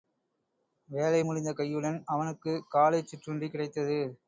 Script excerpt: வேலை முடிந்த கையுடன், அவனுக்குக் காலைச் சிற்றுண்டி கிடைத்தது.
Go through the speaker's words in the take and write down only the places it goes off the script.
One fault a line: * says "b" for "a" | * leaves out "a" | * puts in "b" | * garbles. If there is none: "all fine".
all fine